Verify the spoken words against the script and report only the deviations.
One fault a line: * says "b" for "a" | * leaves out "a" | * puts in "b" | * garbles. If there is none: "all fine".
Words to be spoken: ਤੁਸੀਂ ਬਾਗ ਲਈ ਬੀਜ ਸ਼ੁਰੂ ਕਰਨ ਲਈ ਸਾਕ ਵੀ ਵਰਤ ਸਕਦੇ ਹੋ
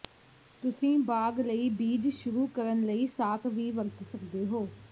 all fine